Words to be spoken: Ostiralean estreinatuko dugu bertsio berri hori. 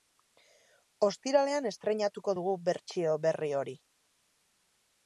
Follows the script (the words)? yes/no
yes